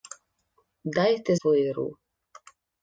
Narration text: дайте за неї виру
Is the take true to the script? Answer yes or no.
no